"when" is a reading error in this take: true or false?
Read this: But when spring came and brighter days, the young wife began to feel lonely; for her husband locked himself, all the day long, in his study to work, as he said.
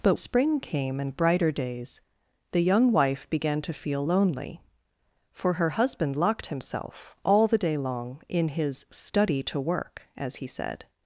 true